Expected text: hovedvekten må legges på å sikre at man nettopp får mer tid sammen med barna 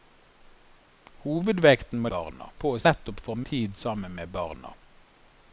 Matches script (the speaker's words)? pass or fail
fail